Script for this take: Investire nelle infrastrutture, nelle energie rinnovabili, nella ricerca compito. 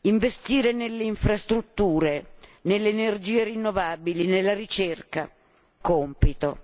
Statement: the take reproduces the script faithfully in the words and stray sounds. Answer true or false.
true